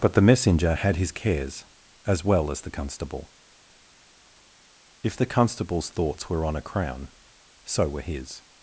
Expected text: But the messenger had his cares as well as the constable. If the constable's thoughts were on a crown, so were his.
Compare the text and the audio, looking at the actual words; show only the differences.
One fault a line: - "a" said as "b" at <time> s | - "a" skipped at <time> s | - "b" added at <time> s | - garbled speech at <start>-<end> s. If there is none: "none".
none